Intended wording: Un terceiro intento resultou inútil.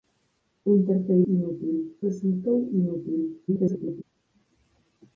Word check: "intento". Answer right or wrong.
wrong